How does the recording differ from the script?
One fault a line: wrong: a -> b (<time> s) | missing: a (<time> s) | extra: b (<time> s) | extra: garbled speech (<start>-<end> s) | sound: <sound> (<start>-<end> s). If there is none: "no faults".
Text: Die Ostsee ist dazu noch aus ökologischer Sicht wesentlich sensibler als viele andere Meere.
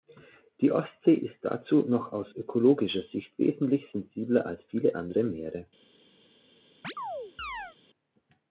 sound: chirp (6.8-7.8 s)